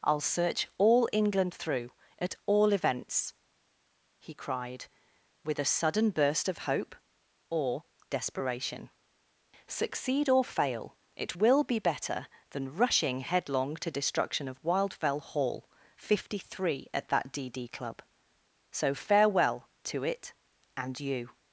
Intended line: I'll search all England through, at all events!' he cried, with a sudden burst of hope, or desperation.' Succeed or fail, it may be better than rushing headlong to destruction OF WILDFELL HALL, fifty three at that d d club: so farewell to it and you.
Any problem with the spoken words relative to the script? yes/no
yes